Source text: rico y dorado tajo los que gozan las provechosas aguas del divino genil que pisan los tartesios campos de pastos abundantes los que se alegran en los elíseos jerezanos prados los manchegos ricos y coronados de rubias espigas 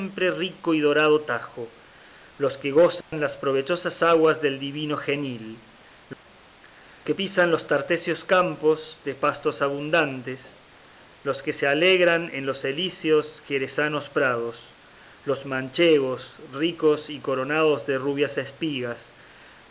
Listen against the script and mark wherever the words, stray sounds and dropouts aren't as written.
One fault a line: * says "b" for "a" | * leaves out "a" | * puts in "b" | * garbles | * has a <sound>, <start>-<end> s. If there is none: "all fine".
* has a dropout, 3.0-3.1 s